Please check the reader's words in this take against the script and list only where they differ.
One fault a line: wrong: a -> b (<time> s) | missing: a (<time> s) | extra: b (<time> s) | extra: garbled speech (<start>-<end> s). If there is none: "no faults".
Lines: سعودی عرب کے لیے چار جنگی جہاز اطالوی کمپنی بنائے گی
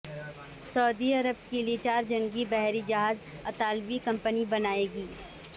extra: بحری (2.5 s)